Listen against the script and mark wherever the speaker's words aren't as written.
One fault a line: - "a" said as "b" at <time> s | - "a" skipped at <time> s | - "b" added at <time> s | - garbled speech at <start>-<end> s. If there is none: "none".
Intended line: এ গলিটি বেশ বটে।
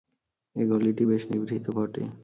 - "নিভৃত" added at 1.3 s